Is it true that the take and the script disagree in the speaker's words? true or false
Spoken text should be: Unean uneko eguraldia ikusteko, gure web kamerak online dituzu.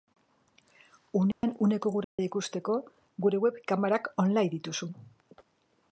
false